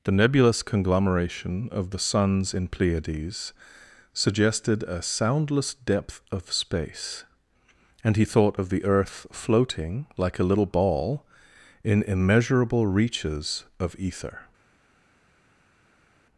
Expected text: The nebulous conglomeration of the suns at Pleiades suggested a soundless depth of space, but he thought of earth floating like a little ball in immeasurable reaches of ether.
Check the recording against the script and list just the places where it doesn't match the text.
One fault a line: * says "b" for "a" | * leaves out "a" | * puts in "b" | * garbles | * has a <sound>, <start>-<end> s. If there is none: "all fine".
* says "in" for "at"
* says "and" for "but"
* puts in "the"